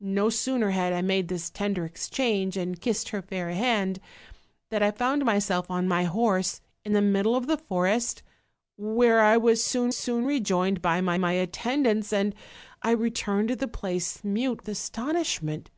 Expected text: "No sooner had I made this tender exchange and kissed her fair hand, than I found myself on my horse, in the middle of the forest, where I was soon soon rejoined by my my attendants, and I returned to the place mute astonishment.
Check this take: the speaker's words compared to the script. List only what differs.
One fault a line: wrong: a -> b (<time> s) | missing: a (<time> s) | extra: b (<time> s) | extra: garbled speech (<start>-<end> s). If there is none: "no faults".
no faults